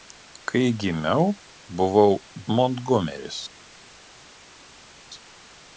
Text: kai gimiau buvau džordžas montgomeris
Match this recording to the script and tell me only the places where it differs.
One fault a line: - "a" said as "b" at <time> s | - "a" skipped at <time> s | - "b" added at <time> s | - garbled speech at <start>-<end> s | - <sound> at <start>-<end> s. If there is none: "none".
- "džordžas" skipped at 2.1 s